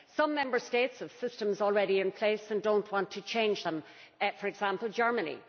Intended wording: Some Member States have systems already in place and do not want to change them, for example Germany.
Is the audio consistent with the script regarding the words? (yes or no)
yes